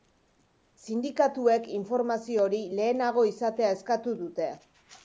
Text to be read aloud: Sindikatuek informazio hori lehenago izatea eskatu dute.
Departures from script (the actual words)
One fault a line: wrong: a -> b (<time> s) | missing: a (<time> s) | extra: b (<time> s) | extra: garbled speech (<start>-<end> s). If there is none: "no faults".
no faults